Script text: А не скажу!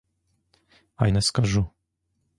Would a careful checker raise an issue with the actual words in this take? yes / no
no